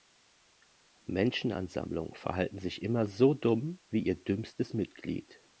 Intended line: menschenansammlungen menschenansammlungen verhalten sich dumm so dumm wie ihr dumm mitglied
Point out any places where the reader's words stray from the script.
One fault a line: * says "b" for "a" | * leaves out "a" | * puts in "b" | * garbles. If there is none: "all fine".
* leaves out "menschenansammlungen"
* says "immer" for "dumm"
* says "dümmstes" for "dumm"